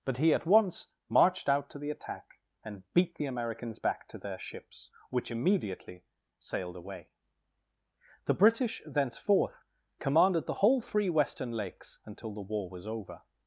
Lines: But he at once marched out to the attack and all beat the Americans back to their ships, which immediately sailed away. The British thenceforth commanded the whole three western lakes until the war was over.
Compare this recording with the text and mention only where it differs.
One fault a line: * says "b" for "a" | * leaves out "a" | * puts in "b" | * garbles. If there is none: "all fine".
* leaves out "all"